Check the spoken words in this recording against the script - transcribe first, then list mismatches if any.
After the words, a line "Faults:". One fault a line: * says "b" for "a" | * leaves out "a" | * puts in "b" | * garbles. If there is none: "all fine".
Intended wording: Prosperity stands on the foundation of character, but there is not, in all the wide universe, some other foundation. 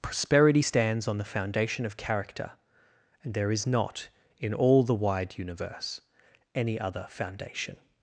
Prosperity stands on the foundation of character, and there is not, in all the wide universe, any other foundation.
Faults:
* says "and" for "but"
* says "any" for "some"